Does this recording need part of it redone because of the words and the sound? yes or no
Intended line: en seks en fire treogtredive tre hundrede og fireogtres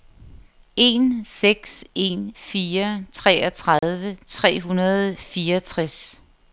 yes